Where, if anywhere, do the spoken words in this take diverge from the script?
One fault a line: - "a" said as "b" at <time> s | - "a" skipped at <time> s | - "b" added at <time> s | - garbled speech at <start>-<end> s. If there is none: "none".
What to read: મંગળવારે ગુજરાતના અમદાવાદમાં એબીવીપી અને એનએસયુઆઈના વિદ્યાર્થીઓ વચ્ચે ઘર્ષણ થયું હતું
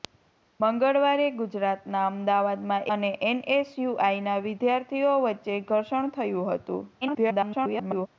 - "એબીવીપી" skipped at 2.9 s
- garbled speech at 7.0-8.1 s